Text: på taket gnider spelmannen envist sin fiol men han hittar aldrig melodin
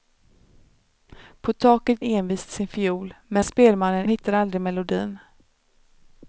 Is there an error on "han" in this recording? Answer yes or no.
yes